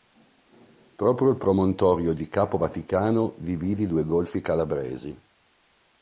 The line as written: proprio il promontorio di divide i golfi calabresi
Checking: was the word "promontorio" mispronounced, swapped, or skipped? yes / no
no